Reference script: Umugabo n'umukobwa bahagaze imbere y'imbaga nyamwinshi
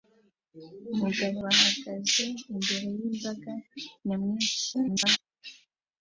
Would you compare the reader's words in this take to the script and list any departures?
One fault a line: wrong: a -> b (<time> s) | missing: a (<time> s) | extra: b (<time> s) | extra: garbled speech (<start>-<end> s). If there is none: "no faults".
missing: n'umukobwa (1.4 s)
extra: garbled speech (4.7-5.2 s)